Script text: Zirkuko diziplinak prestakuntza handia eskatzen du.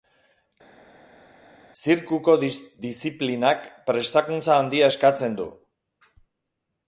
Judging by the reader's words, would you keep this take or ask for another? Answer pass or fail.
pass